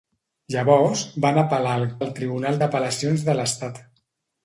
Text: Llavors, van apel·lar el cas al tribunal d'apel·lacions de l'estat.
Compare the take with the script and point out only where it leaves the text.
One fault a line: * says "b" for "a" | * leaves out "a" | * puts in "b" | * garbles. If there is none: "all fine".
* leaves out "cas"